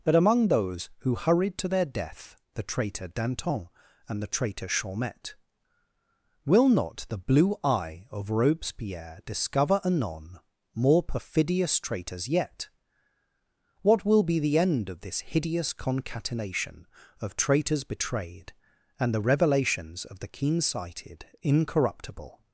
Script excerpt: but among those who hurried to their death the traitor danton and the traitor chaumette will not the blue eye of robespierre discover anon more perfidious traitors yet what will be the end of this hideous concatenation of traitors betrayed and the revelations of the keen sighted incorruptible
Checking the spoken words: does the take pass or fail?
fail